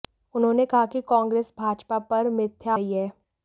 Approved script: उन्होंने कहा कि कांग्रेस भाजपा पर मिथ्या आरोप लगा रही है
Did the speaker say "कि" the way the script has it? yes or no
yes